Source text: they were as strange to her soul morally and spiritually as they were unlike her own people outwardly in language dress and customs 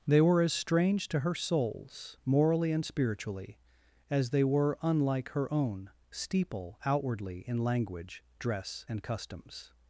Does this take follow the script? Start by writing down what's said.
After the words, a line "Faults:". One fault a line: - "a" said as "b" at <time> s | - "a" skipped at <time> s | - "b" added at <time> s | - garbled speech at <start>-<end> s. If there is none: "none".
they were as strange to her souls morally and spiritually as they were unlike her own steeple outwardly in language dress and customs
Faults:
- "soul" said as "souls" at 1.4 s
- "people" said as "steeple" at 6.1 s